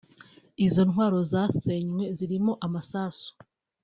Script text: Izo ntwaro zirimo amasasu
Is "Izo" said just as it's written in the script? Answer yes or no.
yes